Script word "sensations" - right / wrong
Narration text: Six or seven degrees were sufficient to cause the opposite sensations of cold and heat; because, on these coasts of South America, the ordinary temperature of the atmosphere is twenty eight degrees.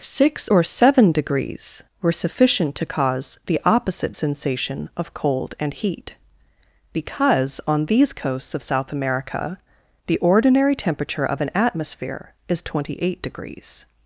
wrong